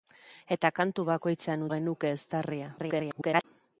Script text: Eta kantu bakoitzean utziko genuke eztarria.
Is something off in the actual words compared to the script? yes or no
yes